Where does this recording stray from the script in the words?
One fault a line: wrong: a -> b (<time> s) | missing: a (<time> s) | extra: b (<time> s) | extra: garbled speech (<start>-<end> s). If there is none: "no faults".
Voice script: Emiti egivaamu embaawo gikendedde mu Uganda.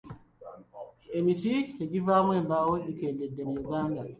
no faults